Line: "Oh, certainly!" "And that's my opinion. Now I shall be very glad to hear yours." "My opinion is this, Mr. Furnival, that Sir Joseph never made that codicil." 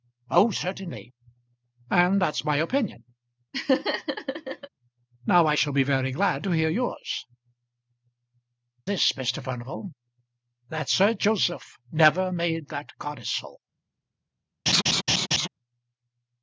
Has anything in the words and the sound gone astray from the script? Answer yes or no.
yes